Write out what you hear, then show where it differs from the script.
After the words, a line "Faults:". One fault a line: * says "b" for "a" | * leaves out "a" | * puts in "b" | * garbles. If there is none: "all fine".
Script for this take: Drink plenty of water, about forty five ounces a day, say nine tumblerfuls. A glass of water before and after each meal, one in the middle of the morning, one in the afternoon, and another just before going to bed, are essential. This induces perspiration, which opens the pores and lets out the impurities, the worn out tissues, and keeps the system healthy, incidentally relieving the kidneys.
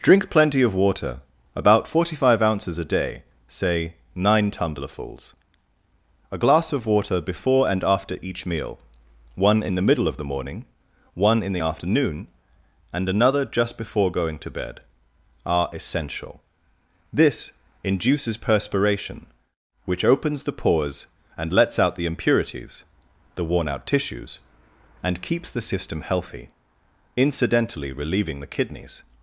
Drink plenty of water, about forty five ounces a day, say nine tumblerfuls. A glass of water before and after each meal, one in the middle of the morning, one in the afternoon, and another just before going to bed, are essential. This induces perspiration, which opens the pores and lets out the impurities, the worn out tissues, and keeps the system healthy, incidentally relieving the kidneys.
Faults:
all fine